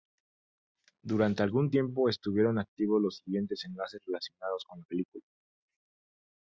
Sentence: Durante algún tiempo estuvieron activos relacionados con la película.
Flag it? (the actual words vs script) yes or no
yes